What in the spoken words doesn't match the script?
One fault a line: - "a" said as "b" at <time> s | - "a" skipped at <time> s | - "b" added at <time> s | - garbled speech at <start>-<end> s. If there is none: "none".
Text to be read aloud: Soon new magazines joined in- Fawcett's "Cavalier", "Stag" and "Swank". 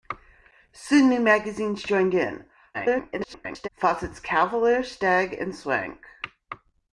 - garbled speech at 2.7-3.7 s